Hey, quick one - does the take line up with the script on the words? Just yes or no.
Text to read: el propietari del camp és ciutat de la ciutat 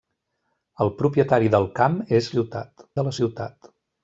yes